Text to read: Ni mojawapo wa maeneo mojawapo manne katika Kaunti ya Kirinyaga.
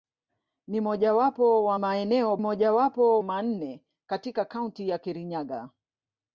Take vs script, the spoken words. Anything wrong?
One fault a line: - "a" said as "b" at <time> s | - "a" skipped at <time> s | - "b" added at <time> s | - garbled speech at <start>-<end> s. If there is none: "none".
none